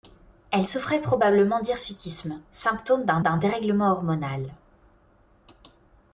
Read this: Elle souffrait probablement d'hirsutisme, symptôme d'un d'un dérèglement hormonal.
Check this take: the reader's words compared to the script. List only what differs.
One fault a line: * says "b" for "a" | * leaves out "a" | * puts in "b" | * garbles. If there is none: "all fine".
all fine